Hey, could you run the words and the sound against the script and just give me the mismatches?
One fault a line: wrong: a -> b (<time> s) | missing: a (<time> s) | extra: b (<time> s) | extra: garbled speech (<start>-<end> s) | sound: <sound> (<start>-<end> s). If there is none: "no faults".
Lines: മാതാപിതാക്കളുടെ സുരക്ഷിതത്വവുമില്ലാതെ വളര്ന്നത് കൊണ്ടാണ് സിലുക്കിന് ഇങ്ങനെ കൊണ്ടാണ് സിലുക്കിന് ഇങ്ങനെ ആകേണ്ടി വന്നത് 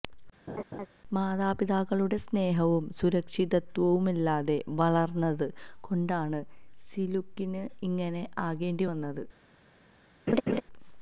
sound: laugh (0.5-0.9 s)
extra: സ്നേഹവും (2.2 s)
missing: കൊണ്ടാണ് സിലുക്കിന് ഇങ്ങനെ (8.1 s)
sound: laugh (10.3-10.6 s)